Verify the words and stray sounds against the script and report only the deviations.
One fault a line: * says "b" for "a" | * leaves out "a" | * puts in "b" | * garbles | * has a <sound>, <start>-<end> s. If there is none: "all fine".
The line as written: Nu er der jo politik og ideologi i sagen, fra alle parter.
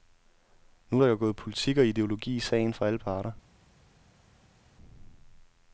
* puts in "gået"